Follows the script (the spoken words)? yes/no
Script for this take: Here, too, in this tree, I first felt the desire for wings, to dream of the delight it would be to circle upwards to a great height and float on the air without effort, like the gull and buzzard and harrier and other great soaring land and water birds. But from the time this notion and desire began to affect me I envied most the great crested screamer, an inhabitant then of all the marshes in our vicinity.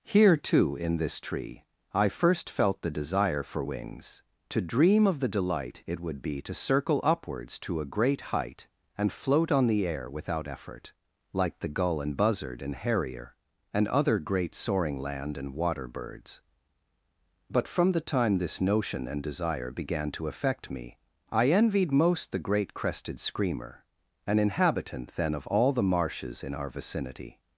yes